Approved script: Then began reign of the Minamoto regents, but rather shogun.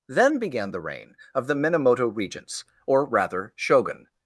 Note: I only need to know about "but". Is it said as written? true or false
false